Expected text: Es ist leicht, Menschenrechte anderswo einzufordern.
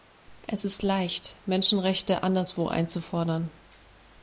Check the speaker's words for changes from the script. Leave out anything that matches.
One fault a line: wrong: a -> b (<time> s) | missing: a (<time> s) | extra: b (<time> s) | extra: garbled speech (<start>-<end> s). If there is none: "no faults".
no faults